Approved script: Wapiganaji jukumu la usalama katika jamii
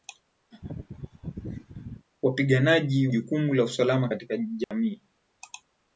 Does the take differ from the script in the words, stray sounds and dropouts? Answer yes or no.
yes